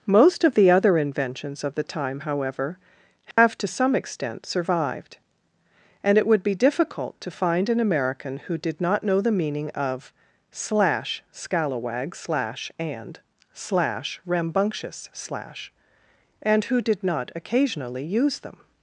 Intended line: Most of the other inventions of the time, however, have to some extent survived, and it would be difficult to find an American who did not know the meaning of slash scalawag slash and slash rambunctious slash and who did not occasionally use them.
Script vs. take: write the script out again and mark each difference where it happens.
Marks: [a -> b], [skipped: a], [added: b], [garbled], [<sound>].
Most of the other inventions of the time, however, have [dropout] to some extent survived, and it would be difficult to find an American who did not know the meaning of slash scalawag slash and slash rambunctious slash and who did not occasionally use them.